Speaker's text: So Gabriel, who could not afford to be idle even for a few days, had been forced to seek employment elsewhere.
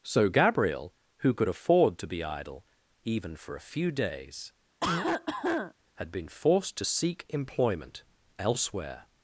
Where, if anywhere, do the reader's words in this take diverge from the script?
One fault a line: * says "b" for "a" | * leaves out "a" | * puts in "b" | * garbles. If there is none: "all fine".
* leaves out "not"